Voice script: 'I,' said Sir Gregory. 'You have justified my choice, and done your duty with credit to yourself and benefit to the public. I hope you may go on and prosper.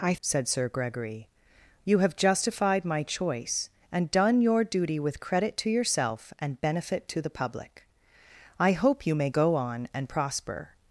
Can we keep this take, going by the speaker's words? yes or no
yes